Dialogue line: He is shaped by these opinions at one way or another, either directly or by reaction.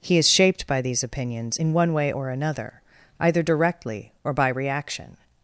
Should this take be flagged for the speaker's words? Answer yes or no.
yes